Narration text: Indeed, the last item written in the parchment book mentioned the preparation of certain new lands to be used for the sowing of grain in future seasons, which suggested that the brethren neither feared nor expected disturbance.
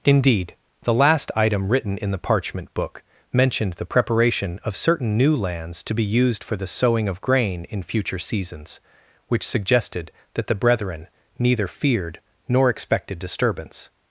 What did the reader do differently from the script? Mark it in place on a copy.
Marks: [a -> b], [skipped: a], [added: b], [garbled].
Indeed, the last item written in the parchment book mentioned the preparation of certain new lands to be used for the sowing of grain in future seasons, which suggested that the brethren neither feared nor expected disturbance.